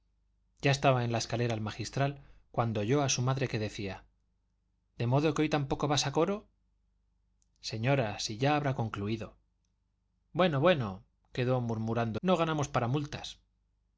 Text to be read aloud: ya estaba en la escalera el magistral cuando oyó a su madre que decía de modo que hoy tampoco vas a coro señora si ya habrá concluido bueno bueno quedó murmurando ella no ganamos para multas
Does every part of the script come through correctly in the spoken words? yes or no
no